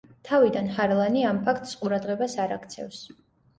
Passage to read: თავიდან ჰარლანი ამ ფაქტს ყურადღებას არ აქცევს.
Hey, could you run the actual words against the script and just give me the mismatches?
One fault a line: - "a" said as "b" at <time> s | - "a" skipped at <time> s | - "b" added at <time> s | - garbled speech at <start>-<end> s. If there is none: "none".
none